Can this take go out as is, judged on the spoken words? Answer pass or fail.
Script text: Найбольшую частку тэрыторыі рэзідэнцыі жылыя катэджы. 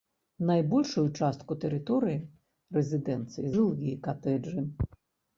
pass